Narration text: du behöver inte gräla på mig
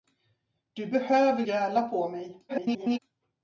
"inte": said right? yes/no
no